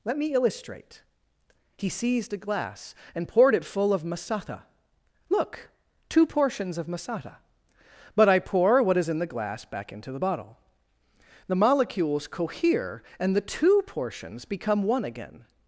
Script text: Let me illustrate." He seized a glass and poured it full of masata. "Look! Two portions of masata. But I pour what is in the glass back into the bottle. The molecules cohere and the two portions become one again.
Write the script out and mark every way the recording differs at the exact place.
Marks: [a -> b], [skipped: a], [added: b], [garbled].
Let me illustrate." He seized a glass and poured it full of masata. "Look! Two portions of masata. But I pour what is in the glass back into the bottle. The molecules cohere and the two portions become one again.